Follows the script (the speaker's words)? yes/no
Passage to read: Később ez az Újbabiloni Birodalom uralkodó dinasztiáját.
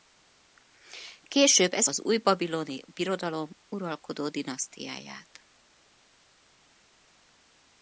yes